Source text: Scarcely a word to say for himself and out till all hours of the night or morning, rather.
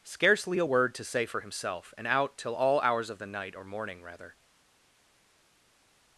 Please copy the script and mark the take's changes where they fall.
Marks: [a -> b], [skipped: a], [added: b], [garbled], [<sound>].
Scarcely a word to say for himself and out till all hours of the night or morning, rather.